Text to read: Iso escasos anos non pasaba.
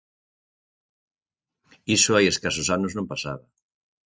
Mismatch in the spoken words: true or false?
true